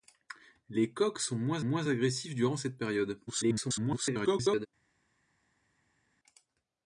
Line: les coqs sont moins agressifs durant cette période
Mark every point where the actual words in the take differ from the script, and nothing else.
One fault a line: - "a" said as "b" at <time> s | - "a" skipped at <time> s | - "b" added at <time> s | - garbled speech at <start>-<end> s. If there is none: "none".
- "moins" added at 1.6 s
- garbled speech at 3.3-4.7 s